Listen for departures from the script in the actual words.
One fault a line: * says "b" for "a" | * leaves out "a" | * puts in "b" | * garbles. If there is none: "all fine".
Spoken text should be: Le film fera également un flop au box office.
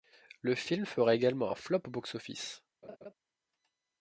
all fine